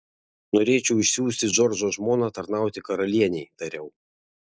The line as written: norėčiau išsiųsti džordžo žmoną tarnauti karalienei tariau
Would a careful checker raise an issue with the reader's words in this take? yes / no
no